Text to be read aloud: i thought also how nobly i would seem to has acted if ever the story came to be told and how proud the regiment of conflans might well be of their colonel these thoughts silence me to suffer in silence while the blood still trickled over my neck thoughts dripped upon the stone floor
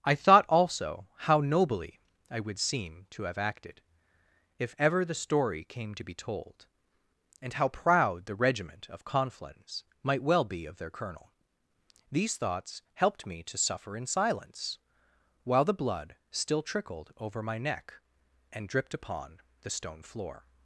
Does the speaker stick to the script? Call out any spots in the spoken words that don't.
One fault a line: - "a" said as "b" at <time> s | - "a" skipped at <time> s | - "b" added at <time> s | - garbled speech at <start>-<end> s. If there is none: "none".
- "has" said as "have" at 3.2 s
- "silence" said as "helped" at 12.9 s
- "thoughts" said as "and" at 18.5 s